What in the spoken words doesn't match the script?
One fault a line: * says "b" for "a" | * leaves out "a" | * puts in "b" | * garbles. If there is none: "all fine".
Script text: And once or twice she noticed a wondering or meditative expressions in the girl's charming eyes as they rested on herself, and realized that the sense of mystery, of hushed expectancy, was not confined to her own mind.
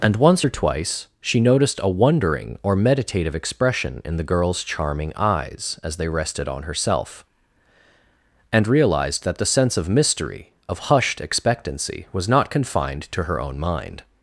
* says "expression" for "expressions"